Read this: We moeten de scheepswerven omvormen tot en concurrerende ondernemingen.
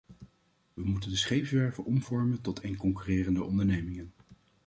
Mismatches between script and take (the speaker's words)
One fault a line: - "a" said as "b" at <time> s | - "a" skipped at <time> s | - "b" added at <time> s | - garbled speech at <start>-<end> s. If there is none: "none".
none